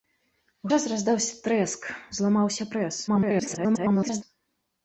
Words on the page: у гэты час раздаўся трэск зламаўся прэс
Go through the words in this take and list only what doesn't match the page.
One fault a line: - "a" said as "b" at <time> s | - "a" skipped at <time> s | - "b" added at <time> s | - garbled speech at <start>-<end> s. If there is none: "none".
- "гэты" skipped at 0.7 s
- garbled speech at 3.1-4.2 s